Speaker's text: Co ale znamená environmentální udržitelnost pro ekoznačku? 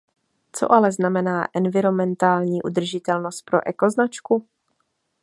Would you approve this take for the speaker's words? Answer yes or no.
yes